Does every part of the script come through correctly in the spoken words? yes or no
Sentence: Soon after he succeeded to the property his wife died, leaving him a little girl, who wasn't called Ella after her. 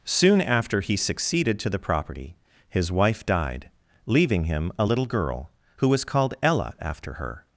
no